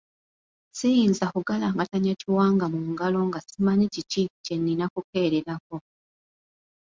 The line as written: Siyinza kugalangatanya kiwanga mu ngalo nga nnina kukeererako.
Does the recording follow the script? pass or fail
fail